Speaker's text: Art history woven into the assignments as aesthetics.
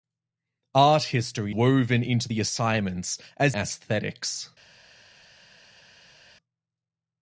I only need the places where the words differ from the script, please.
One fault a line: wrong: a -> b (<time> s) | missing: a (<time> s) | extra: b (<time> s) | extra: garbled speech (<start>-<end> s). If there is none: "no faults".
no faults